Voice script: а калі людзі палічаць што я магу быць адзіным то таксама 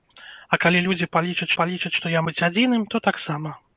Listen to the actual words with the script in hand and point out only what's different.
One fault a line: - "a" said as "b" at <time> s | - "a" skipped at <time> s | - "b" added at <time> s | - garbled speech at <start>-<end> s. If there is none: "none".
- "палічаць" added at 1.6 s
- "магу" skipped at 2.2 s